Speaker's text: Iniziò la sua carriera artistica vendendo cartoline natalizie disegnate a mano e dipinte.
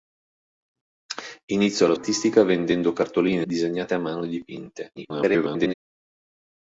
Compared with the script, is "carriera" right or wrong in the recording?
wrong